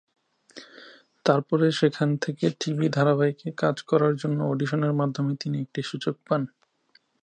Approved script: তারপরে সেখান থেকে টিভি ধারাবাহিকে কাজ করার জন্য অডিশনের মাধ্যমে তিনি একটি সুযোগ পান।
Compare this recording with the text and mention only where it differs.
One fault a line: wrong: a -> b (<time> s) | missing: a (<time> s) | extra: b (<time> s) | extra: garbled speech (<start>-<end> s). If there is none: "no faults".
no faults